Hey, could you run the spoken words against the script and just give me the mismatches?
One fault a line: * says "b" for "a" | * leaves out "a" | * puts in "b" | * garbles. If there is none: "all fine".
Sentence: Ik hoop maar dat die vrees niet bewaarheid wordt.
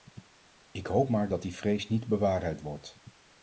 all fine